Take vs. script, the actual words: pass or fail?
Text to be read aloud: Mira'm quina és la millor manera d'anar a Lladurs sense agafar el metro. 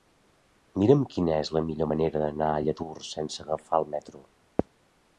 pass